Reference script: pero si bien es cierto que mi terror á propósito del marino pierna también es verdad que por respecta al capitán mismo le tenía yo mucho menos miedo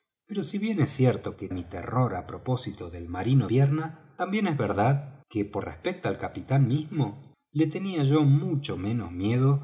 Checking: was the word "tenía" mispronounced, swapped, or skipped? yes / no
no